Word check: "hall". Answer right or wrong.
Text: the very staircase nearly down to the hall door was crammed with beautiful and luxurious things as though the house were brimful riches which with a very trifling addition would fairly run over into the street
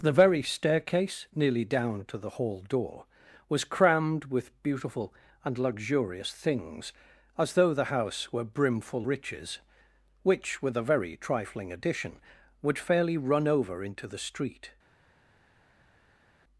right